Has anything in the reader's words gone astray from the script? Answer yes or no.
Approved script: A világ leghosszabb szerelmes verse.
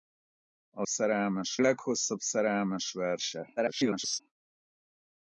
yes